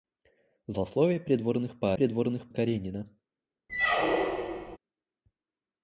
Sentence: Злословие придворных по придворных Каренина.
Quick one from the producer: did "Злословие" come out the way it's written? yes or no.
yes